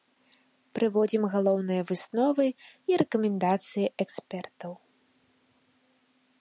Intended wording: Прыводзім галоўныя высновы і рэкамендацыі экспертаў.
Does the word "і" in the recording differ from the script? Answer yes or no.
no